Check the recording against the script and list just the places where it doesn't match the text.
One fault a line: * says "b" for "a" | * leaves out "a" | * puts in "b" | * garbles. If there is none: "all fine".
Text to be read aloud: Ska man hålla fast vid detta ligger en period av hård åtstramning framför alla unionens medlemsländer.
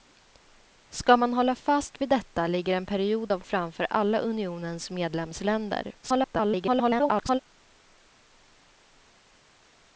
* leaves out "hård åtstramning"
* garbles